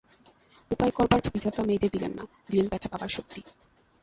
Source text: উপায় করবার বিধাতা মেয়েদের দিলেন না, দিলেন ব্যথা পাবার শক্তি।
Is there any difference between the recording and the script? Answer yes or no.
no